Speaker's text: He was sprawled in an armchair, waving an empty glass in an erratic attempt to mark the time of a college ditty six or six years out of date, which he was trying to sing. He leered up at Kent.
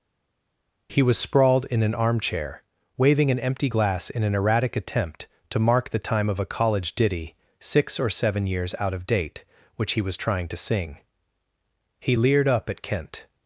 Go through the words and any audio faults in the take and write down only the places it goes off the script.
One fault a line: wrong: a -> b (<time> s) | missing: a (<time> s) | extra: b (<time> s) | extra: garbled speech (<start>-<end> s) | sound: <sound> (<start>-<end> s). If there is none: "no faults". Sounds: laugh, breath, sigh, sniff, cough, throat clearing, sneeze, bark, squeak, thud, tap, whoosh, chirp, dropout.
wrong: six -> seven (8.1 s)